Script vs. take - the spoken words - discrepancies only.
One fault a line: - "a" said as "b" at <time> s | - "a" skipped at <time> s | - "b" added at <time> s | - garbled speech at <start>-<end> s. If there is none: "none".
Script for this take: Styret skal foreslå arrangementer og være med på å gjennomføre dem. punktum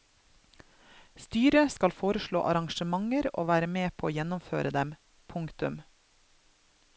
none